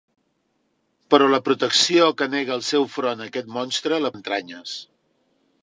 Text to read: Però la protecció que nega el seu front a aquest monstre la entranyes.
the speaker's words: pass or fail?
pass